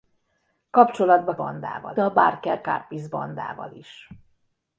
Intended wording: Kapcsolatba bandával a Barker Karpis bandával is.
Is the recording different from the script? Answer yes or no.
no